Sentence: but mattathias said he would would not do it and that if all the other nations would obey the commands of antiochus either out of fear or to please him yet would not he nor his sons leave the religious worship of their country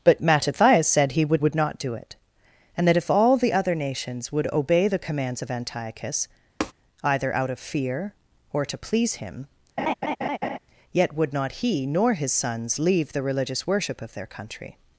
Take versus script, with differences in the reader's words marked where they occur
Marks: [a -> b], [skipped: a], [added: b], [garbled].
but mattathias said he would would not do it and that if all the other nations would obey the commands of antiochus either out of fear or to please him yet would not he nor his sons leave the religious worship of their country